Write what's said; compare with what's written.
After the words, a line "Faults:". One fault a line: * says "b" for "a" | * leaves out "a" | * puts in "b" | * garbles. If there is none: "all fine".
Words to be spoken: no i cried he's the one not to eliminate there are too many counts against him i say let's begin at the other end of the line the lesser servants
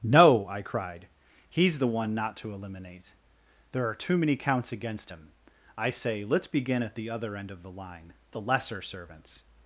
no i cried he's the one not to eliminate there are too many counts against him i say let's begin at the other end of the line the lesser servants
Faults:
all fine